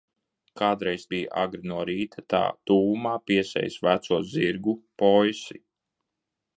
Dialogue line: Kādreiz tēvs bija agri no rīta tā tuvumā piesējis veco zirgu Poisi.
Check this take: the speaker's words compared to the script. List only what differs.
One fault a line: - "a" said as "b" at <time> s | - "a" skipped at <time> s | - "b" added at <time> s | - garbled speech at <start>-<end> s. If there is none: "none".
- "tēvs" skipped at 1.0 s